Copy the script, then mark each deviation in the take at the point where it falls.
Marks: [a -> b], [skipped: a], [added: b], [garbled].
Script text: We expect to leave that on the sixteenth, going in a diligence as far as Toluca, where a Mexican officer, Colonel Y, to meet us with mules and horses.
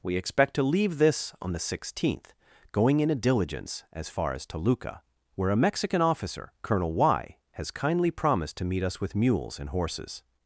We expect to leave [that -> this] on the sixteenth, going in a diligence as far as Toluca, where a Mexican officer, Colonel Y, [added: has kindly promised] to meet us with mules and horses.